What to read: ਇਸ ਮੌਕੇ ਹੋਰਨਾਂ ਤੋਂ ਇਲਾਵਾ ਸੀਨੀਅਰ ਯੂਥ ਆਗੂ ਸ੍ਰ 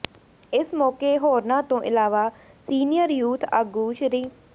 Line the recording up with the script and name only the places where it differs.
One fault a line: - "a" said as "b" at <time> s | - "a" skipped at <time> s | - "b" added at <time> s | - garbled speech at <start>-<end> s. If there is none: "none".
none